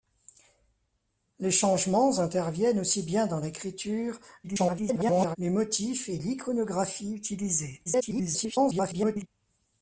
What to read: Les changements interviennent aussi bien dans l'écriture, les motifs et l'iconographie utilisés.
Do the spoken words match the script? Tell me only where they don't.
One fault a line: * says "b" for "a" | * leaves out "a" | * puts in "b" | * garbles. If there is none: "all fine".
* garbles
* garbles